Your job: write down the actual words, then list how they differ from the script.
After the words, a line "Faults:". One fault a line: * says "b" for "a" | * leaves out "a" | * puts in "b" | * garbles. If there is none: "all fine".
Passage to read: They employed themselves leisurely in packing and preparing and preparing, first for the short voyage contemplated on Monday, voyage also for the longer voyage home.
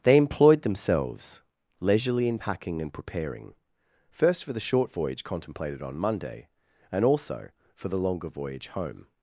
They employed themselves leisurely in packing and preparing, first for the short voyage contemplated on Monday, and also for the longer voyage home.
Faults:
* leaves out "and preparing"
* says "and" for "voyage"